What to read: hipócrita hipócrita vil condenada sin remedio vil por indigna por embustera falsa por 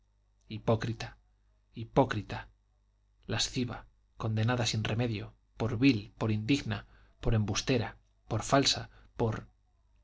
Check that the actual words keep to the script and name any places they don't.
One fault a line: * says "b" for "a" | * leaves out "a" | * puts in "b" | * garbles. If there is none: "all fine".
* says "lasciva" for "vil"
* puts in "por"
* puts in "por"